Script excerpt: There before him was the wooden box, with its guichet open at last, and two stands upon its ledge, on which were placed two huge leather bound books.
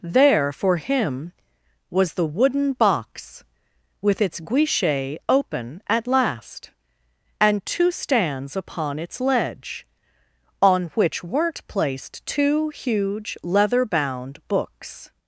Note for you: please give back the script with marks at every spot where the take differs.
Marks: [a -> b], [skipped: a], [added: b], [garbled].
There [before -> for] him was the wooden box, with its guichet open at last, and two stands upon its ledge, on which [were -> weren't] placed two huge leather bound books.